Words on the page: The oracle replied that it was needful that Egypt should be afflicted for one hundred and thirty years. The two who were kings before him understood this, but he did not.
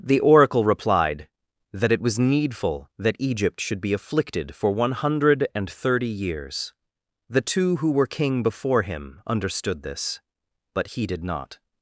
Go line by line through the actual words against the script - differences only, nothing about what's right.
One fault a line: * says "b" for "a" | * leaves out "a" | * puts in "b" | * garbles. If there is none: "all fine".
* says "king" for "kings"